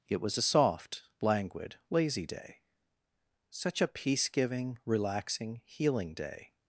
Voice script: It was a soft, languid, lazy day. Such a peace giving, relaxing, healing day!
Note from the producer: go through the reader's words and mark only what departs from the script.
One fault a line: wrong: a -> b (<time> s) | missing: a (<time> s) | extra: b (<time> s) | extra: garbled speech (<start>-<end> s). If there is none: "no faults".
no faults